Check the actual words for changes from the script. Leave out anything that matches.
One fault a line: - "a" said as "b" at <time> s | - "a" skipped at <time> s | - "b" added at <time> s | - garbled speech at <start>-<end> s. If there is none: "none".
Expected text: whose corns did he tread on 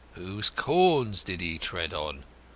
none